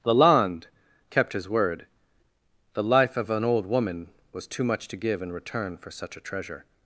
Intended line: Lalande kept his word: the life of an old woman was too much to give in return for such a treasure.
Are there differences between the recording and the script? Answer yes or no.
no